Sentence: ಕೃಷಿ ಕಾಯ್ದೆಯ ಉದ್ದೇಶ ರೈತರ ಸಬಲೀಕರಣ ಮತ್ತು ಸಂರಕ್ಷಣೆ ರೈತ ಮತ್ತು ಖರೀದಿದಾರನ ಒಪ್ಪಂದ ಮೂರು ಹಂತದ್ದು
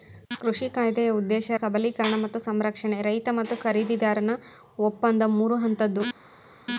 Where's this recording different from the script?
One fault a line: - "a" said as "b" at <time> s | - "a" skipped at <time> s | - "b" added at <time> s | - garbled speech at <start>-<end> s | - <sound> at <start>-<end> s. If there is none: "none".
- "ರೈತರ" skipped at 1.5 s